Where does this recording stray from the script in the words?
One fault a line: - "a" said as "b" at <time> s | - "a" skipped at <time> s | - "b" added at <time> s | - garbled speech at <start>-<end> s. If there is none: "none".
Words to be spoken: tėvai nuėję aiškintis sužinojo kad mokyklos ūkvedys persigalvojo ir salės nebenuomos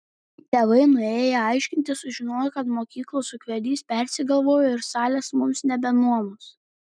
- "mums" added at 5.4 s